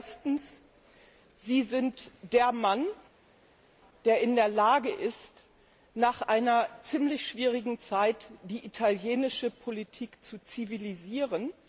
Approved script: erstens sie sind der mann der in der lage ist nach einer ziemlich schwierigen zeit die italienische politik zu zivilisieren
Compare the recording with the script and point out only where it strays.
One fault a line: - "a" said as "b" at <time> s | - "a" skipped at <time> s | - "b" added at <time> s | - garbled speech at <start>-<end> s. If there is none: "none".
none